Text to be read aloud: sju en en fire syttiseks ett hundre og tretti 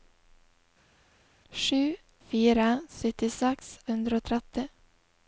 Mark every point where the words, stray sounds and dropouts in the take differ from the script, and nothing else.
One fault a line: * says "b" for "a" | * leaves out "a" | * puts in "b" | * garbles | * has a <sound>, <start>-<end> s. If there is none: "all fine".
* leaves out "en en"
* leaves out "ett"